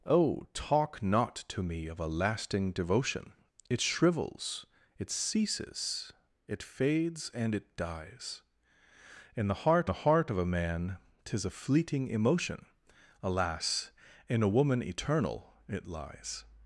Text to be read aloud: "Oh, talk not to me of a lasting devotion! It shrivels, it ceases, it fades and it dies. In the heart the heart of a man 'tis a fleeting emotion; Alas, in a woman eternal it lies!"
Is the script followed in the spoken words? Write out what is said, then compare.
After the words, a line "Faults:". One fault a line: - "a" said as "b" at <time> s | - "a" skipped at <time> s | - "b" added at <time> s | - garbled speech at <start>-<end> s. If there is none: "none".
"Oh, talk not to me of a lasting devotion! It shrivels, it ceases, it fades and it dies. In the heart the heart of a man 'tis a fleeting emotion; Alas, in a woman eternal it lies!"
Faults:
none